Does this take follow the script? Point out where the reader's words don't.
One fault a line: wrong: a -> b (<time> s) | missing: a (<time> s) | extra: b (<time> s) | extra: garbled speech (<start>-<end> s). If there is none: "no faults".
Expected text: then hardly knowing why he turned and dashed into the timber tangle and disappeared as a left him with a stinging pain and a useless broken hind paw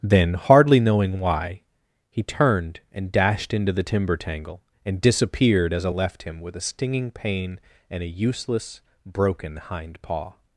no faults